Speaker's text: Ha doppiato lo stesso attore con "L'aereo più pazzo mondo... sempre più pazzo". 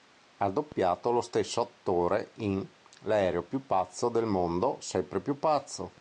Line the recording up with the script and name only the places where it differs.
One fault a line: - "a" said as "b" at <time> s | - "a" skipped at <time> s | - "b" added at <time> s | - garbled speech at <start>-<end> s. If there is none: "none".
- "con" said as "in" at 2.4 s
- "del" added at 4.1 s